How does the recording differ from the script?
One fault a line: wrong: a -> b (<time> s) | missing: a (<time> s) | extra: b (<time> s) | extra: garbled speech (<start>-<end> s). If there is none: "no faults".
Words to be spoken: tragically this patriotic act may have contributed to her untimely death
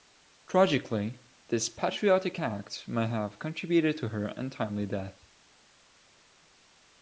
no faults